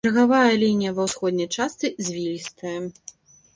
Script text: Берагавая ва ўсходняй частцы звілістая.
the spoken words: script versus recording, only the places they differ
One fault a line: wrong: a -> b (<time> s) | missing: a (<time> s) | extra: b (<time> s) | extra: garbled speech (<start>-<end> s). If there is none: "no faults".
extra: лінія (0.6 s)